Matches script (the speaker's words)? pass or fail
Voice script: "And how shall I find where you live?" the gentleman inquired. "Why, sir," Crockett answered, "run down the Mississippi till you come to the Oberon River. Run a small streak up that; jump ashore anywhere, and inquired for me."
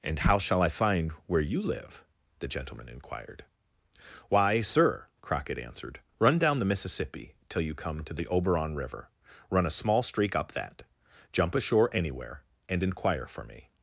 fail